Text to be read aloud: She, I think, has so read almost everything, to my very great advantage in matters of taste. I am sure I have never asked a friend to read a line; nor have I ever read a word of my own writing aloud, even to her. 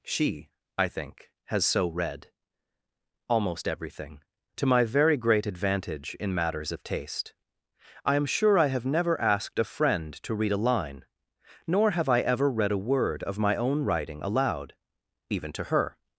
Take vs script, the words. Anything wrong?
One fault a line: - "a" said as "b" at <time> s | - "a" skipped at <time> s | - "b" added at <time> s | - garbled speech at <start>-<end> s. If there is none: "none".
none